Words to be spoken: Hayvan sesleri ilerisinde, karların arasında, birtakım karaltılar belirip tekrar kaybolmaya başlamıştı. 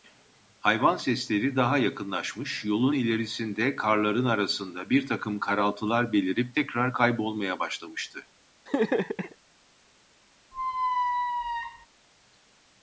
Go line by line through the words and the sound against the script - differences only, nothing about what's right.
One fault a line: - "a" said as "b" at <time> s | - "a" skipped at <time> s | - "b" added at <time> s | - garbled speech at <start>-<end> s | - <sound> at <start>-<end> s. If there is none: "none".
- "daha yakınlaşmış yolun" added at 1.6 s
- laugh at 8.7-9.4 s
- squeak at 10.5-11.9 s